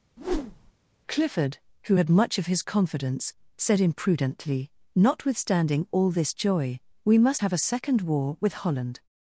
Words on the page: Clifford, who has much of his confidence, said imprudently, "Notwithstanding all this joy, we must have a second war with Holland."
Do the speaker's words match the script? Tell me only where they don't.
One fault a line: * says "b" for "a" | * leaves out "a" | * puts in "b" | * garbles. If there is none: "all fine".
* says "had" for "has"